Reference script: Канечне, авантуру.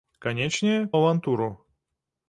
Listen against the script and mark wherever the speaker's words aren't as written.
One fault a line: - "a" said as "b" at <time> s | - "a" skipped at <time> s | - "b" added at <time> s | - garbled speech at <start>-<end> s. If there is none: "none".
none